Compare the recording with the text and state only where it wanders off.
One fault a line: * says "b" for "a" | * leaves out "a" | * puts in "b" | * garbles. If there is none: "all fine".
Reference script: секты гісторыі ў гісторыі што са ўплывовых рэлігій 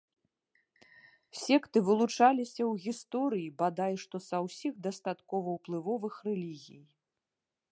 * says "вылучаліся" for "гісторыі"
* puts in "бадай"
* puts in "ўсіх дастаткова"